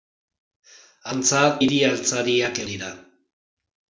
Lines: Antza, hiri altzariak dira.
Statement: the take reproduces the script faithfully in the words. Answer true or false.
true